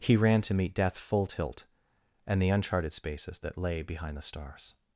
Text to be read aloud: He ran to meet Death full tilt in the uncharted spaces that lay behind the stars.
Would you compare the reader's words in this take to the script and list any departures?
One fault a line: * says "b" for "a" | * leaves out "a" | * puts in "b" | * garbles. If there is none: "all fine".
* says "and" for "in"